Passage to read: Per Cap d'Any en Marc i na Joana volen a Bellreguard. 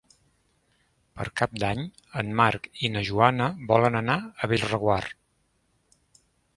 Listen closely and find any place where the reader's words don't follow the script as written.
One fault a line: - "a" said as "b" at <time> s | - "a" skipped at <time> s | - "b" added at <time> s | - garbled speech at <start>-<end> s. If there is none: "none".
- "anar" added at 4.0 s